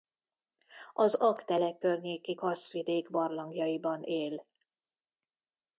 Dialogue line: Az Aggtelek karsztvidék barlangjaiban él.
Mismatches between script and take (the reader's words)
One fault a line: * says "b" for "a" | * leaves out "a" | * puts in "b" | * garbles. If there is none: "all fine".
* puts in "környéki"